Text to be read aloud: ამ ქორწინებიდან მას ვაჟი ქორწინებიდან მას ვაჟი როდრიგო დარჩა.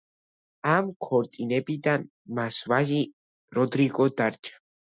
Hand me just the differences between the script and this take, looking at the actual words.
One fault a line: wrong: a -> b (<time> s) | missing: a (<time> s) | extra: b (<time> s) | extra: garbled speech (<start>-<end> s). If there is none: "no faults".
missing: ქორწინებიდან მას ვაჟი (3.0 s)